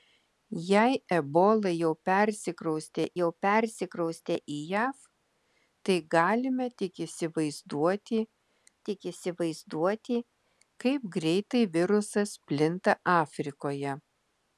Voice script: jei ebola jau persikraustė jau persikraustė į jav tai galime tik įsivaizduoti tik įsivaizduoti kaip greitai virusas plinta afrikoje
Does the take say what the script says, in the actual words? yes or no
yes